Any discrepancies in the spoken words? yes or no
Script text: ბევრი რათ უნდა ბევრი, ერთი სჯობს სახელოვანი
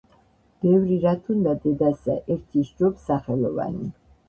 yes